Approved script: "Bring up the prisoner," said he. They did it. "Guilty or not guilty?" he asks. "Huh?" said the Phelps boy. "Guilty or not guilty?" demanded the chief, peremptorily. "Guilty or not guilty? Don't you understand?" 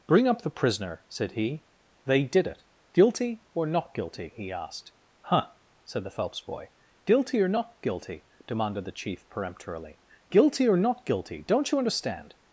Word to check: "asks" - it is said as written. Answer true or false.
false